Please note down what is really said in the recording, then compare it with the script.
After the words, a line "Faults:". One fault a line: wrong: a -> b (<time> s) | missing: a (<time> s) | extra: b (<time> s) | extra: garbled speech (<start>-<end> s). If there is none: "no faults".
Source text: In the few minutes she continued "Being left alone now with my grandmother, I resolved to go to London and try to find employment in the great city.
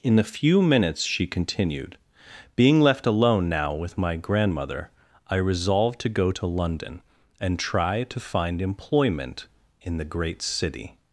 In the few minutes she continued "Being left alone now with my grandmother, I resolved to go to London and try to find employment in the great city.
Faults:
no faults